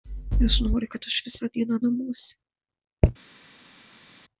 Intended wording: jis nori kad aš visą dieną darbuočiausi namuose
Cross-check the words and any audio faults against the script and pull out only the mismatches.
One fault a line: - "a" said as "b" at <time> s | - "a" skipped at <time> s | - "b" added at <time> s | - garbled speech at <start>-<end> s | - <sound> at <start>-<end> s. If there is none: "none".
- "darbuočiausi" skipped at 1.8 s